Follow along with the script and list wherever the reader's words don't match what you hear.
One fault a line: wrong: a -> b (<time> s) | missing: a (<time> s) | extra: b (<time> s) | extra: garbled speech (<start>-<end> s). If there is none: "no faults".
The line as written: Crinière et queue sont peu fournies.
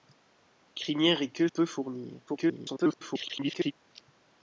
missing: sont (1.5 s)
extra: garbled speech (2.3-3.7 s)